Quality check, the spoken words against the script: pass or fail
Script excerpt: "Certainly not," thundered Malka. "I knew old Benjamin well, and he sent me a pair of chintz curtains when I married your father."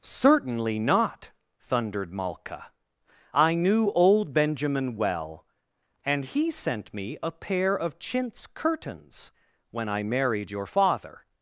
pass